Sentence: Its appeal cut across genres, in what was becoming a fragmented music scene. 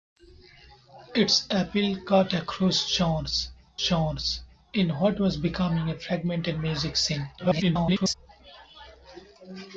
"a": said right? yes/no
yes